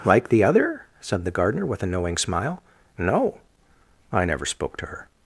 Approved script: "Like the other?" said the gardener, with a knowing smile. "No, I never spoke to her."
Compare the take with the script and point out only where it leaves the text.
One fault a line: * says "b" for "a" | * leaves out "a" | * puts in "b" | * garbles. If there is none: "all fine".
all fine